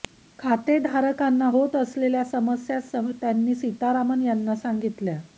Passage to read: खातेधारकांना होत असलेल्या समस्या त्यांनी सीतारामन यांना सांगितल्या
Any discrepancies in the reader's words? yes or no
no